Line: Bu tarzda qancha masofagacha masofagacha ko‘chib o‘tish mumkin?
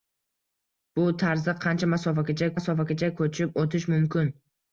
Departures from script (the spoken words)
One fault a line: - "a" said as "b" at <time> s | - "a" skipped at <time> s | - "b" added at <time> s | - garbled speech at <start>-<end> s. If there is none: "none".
none